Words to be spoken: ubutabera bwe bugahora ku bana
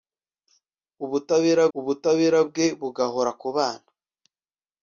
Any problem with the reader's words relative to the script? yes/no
yes